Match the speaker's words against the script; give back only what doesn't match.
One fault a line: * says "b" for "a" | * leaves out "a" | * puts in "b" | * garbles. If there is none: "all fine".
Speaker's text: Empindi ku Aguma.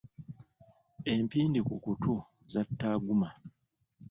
* puts in "kutu zatta"